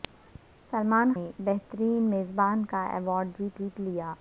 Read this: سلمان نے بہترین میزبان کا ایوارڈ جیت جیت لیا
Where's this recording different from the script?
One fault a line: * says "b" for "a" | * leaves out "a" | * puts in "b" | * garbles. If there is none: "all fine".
all fine